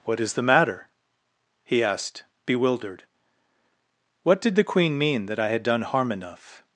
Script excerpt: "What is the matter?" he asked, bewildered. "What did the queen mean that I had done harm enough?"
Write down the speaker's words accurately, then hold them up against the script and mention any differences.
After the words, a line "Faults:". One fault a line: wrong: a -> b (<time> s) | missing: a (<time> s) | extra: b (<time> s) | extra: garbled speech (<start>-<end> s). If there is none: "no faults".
"What is the matter?" he asked, bewildered. "What did the queen mean that I had done harm enough?"
Faults:
no faults